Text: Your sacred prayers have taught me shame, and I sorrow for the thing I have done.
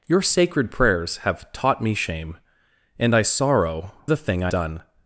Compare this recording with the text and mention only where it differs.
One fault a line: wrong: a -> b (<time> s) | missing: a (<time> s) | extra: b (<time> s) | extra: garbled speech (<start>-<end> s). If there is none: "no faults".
missing: for (3.9 s)
missing: have (4.5 s)